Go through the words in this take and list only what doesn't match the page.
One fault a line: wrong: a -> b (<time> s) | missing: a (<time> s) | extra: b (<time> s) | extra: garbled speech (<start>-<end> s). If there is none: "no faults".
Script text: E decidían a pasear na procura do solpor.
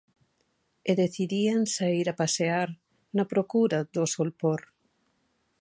extra: saír (1.7 s)